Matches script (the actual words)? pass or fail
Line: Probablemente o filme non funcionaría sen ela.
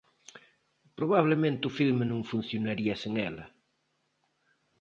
pass